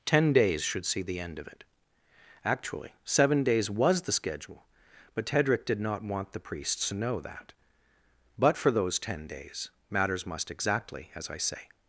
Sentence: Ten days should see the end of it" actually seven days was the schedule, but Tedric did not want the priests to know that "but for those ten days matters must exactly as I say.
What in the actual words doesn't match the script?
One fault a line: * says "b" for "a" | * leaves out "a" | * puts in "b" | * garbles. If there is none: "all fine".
all fine